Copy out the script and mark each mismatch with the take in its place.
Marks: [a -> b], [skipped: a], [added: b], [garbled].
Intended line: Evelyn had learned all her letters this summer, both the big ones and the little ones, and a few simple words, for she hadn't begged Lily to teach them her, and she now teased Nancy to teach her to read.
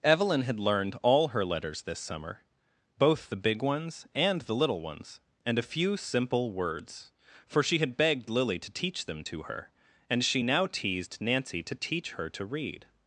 Evelyn had learned all her letters this summer, both the big ones and the little ones, and a few simple words, for she [hadn't -> had] begged Lily to teach them [added: to] her, and she now teased Nancy to teach her to read.